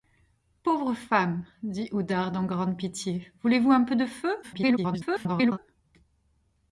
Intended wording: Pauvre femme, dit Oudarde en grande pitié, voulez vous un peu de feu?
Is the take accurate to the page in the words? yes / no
no